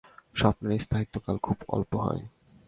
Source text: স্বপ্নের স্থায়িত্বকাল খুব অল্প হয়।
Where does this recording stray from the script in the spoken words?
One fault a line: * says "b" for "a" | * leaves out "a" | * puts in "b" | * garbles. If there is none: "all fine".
all fine